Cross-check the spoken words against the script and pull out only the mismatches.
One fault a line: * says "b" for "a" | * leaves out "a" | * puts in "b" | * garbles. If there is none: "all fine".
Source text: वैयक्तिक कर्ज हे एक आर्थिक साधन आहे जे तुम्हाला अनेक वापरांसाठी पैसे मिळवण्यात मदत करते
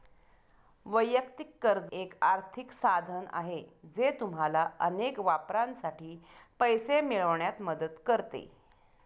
* leaves out "हे"